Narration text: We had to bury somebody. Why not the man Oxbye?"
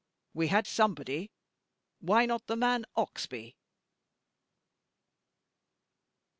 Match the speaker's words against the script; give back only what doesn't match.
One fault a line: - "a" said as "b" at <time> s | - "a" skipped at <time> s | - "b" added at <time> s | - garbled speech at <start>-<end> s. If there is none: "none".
- "to bury" skipped at 0.7 s